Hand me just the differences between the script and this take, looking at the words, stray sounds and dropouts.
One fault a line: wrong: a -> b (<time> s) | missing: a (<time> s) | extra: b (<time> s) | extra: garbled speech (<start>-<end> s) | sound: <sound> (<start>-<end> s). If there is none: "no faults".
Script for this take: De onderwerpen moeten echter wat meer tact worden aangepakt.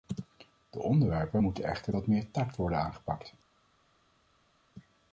no faults